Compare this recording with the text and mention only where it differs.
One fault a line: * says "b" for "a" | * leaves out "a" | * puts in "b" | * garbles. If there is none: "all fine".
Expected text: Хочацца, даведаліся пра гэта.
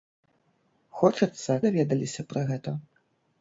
all fine